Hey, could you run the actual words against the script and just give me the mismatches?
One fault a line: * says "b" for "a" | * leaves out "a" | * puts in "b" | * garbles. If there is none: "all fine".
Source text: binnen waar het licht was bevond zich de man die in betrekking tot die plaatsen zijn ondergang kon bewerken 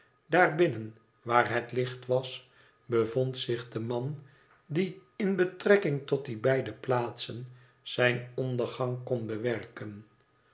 * puts in "beide"